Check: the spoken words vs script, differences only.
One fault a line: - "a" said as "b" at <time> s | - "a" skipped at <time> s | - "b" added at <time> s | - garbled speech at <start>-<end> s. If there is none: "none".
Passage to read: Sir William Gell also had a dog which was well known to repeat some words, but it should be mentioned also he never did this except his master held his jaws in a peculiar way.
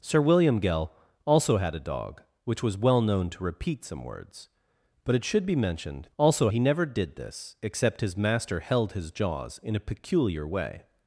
none